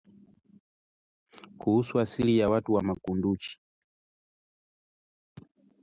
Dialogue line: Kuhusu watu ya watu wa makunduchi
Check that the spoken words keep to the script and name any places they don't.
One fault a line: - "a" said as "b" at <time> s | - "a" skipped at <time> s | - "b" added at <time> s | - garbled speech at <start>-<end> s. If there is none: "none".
- "watu" said as "asili" at 2.0 s